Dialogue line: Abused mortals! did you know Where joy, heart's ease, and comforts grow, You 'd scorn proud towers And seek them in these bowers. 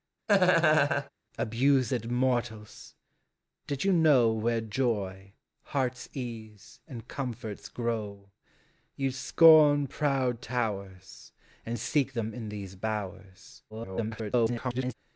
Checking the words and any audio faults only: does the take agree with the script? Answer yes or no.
no